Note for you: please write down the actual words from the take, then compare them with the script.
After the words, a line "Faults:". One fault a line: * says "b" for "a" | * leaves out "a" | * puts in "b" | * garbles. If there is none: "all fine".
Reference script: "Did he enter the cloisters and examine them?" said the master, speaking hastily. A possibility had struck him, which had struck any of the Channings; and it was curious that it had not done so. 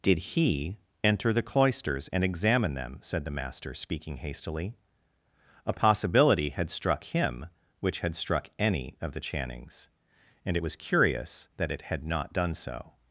"Did he enter the cloisters and examine them?" said the master, speaking hastily. A possibility had struck him, which had struck any of the Channings; and it was curious that it had not done so.
Faults:
all fine